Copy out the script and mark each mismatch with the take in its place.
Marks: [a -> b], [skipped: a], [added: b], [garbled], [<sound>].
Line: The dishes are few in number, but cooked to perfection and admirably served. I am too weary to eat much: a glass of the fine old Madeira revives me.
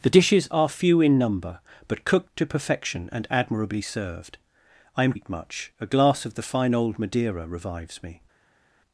The dishes are few in number, but cooked to perfection and admirably served. I am [skipped: too weary to] eat much: a glass of the fine old Madeira revives me.